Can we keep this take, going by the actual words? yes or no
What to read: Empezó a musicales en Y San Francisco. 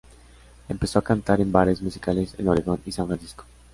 no